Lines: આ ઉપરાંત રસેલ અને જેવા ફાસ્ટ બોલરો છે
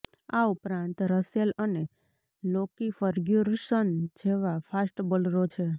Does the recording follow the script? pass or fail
fail